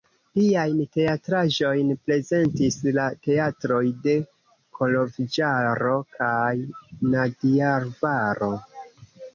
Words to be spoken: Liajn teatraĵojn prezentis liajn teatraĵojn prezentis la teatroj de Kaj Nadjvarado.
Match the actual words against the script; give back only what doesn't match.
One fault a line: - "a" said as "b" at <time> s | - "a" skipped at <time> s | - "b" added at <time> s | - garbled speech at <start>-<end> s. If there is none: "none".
- "liajn teatraĵojn prezentis" skipped at 2.8 s
- "Koloĵvaro" added at 4.8 s